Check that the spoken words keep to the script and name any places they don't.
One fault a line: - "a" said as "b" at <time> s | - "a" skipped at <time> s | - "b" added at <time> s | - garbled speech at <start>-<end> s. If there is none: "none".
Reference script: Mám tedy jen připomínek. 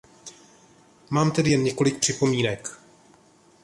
- "několik" added at 1.6 s